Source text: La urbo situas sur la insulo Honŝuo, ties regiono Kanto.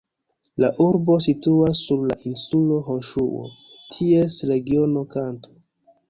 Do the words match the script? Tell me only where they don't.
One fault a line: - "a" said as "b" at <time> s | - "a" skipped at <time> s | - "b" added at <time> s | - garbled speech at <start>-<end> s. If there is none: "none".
none